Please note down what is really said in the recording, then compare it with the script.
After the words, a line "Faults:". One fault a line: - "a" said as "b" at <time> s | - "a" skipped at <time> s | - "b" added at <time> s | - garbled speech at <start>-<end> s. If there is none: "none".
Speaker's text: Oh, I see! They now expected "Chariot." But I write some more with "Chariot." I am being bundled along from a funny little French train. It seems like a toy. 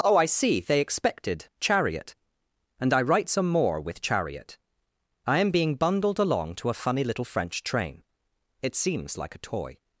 Oh, I see! They expected "Chariot." And I write some more with "Chariot." I am being bundled along to a funny little French train. It seems like a toy.
Faults:
- "now" skipped at 0.8 s
- "But" said as "And" at 2.8 s
- "from" said as "to" at 6.5 s